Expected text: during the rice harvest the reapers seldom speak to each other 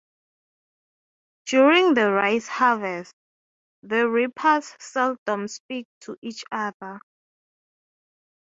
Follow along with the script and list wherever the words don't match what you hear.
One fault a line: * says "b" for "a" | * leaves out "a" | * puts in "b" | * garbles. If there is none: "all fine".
all fine